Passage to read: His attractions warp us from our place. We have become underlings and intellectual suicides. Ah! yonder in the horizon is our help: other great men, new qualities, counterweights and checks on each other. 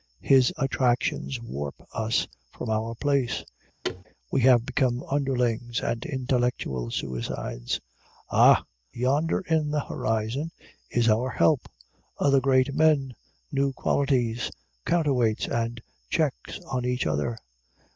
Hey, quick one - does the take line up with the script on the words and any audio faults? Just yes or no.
no